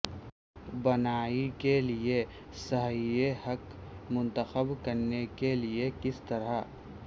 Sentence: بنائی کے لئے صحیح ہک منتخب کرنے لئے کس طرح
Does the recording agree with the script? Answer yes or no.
no